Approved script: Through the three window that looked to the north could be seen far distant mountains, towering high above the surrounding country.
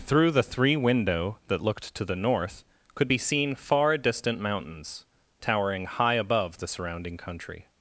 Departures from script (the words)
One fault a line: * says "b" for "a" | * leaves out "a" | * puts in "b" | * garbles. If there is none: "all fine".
all fine